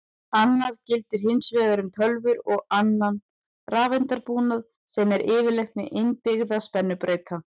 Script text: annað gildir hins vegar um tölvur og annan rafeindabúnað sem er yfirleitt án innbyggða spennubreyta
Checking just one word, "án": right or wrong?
wrong